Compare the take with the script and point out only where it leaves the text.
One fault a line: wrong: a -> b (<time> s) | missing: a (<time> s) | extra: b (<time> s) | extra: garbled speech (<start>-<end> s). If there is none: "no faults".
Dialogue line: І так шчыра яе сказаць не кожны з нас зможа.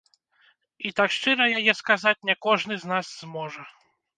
no faults